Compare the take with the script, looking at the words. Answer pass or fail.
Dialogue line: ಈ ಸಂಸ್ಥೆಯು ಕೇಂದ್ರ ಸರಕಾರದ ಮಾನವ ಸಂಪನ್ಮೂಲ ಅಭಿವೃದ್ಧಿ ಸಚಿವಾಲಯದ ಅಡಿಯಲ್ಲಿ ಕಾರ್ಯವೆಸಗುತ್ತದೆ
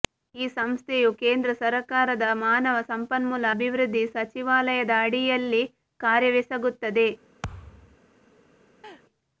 pass